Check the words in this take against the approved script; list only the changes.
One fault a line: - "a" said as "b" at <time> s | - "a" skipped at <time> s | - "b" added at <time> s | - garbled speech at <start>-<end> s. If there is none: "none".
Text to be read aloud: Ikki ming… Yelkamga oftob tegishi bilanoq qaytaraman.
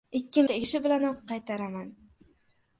- "ming Yelkamga oftob" skipped at 0.4 s